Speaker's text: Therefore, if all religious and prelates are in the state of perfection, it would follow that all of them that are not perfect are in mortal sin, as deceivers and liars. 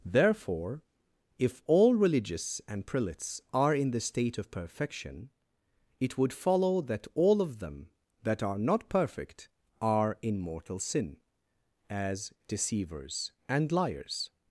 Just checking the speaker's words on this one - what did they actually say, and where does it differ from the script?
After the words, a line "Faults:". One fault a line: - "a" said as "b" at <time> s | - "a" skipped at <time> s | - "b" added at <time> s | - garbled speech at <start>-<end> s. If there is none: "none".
Therefore, if all religious and prelates are in the state of perfection, it would follow that all of them that are not perfect are in mortal sin, as deceivers and liars.
Faults:
none